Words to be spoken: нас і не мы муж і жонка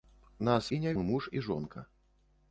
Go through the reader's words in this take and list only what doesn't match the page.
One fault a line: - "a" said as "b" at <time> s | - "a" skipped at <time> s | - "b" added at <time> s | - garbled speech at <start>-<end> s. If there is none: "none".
none